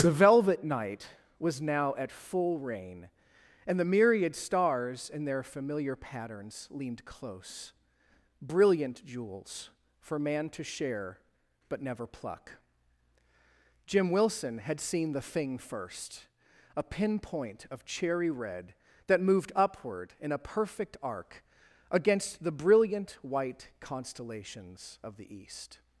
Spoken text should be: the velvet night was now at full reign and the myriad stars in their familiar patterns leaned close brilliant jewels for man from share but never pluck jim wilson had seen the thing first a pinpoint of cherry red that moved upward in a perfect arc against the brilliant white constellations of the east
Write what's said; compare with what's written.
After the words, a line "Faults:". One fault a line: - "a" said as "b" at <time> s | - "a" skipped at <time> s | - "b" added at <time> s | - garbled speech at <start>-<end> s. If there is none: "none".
the velvet night was now at full reign and the myriad stars in their familiar patterns leaned close brilliant jewels for man to share but never pluck jim wilson had seen the thing first a pinpoint of cherry red that moved upward in a perfect arc against the brilliant white constellations of the east
Faults:
- "from" said as "to" at 10.5 s